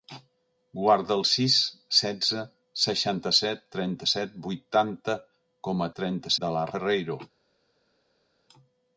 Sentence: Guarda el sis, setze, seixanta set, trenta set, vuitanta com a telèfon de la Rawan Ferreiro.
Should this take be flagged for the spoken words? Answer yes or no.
yes